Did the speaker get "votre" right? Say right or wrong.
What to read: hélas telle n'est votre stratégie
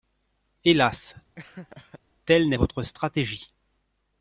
right